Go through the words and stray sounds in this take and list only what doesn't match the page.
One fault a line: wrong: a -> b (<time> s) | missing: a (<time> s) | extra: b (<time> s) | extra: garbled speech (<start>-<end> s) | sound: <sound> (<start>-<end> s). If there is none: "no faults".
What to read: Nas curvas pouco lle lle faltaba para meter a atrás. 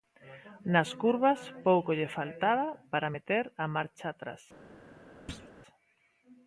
missing: lle (2.1 s)
extra: marcha (3.8 s)
sound: thud (5.3-5.5 s)